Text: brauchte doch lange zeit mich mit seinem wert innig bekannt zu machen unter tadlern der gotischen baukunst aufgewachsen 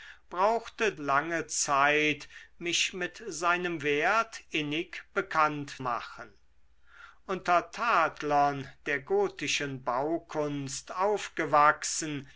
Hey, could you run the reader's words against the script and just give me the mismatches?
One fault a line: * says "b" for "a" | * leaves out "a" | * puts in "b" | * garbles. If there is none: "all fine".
* leaves out "doch"
* leaves out "zu"